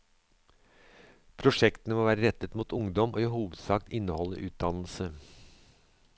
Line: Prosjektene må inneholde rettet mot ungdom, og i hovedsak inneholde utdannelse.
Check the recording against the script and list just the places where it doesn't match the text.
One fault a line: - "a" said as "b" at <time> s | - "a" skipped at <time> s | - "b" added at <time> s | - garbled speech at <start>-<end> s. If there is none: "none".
- "inneholde" said as "være" at 2.1 s